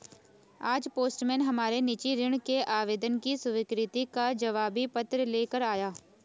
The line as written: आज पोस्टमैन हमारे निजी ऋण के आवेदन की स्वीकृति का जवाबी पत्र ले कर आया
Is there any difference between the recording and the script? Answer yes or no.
no